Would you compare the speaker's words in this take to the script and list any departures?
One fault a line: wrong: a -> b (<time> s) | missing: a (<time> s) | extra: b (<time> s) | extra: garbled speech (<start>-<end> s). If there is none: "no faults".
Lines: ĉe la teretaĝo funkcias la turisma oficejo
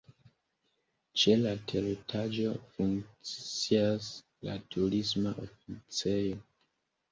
no faults